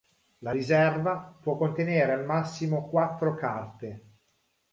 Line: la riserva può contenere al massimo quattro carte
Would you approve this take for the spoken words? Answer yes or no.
yes